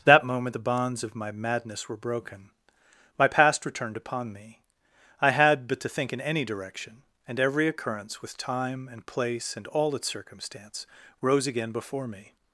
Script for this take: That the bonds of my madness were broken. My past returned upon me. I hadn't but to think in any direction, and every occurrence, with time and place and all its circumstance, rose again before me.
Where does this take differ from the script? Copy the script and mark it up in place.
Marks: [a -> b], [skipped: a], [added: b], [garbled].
That [added: moment] the bonds of my madness were broken. My past returned upon me. I [hadn't -> had] but to think in any direction, and every occurrence, with time and place and all its circumstance, rose again before me.